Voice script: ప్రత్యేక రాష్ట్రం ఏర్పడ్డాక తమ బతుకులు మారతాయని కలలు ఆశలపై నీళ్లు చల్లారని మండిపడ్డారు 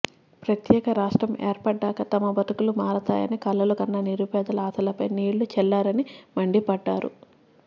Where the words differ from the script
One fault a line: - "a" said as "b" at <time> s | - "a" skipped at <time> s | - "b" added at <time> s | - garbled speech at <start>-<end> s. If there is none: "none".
- "కన్న నిరుపేదల" added at 3.7 s